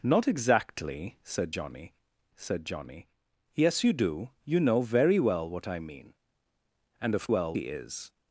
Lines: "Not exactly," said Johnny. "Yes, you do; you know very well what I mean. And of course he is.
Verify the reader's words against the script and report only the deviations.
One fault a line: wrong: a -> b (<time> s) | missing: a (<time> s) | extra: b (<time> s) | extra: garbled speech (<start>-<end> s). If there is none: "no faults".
extra: said Johnny (2.4 s)
wrong: course -> well (7.3 s)